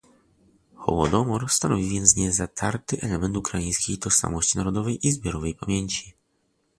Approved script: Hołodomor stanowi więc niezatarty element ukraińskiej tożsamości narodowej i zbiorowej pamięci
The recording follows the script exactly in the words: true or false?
true